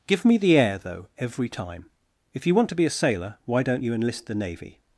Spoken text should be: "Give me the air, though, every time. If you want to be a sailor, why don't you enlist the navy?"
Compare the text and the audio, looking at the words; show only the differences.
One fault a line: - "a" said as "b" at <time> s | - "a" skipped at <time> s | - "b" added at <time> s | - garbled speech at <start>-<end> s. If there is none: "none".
none